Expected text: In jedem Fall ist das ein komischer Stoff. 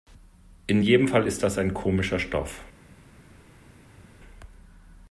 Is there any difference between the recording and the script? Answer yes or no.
no